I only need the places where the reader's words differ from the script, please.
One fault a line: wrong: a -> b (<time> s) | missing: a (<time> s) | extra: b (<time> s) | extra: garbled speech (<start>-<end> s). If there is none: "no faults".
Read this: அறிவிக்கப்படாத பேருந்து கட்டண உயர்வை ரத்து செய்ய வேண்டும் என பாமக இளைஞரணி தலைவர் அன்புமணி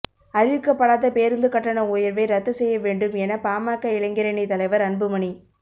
no faults